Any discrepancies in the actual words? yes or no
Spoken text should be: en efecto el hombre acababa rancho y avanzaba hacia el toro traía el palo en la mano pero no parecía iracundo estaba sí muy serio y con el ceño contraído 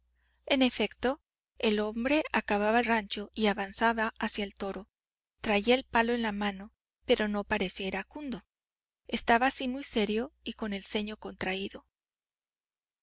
no